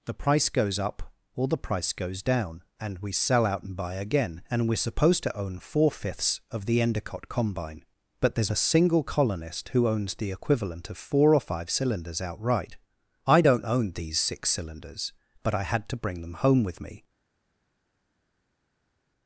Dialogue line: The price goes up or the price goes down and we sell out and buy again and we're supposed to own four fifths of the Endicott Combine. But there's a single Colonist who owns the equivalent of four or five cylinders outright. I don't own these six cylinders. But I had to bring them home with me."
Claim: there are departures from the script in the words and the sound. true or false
false